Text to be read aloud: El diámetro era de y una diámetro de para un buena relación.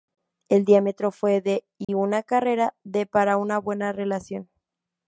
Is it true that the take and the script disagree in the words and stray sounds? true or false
true